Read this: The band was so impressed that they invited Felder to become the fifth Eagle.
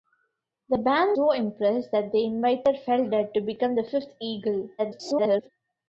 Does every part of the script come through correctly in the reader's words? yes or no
no